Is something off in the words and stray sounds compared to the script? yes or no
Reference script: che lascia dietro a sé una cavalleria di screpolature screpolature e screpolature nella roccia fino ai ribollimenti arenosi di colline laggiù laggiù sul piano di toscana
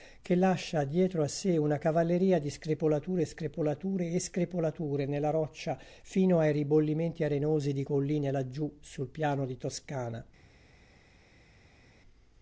yes